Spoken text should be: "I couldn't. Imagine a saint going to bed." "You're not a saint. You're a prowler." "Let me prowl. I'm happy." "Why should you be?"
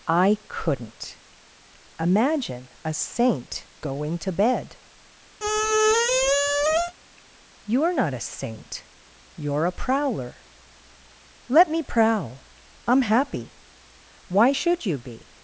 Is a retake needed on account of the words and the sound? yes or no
yes